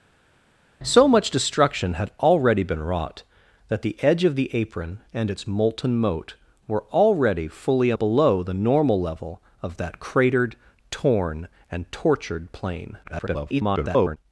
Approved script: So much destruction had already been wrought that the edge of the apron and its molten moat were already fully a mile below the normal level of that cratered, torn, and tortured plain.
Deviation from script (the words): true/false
true